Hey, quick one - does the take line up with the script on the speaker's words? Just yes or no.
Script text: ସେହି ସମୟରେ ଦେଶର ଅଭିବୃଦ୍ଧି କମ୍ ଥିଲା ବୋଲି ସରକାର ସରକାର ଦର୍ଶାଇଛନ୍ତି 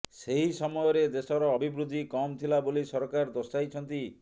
no